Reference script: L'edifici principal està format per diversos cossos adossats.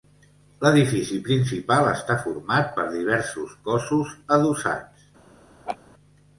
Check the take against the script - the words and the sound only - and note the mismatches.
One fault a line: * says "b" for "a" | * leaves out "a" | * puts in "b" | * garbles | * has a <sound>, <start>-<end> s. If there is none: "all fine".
* has a laugh, 5.7-5.8 s